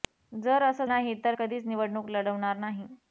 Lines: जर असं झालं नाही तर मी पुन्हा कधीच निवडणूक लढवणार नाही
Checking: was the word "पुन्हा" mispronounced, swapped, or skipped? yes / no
yes